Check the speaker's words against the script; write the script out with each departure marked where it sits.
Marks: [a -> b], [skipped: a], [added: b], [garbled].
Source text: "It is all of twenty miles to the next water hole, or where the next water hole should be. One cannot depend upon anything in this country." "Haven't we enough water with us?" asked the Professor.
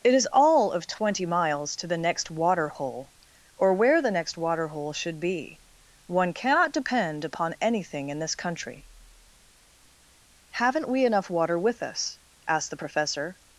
"It is all of twenty miles to the next water hole, or where the next water hole should be. One cannot depend upon anything in this country." "Haven't we enough water with us?" asked the Professor.